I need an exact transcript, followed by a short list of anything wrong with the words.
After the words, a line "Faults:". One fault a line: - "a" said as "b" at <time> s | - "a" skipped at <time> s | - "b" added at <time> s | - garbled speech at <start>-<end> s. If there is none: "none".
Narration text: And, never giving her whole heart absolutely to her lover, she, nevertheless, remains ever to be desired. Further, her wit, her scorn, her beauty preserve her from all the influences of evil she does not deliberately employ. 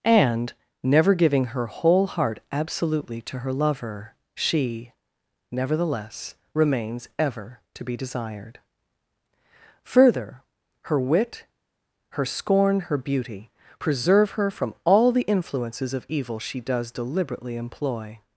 And, never giving her whole heart absolutely to her lover, she, nevertheless, remains ever to be desired. Further, her wit, her scorn, her beauty preserve her from all the influences of evil she does deliberately employ.
Faults:
- "not" skipped at 16.9 s